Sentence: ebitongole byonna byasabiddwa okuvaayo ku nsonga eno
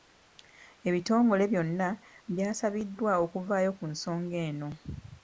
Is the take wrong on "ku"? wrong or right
right